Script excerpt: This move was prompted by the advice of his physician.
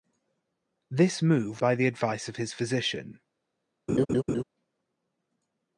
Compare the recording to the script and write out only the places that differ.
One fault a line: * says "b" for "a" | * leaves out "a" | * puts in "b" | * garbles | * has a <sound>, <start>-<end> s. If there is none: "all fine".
* leaves out "was prompted"
* has a laugh, 3.9-4.4 s